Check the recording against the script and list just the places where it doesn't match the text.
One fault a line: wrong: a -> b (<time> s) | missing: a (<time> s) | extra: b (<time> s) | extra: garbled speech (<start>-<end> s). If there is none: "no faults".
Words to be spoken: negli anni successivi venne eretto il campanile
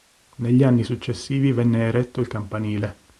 no faults